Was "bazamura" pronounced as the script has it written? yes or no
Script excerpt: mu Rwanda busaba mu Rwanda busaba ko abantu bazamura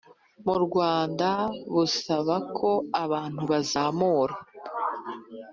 yes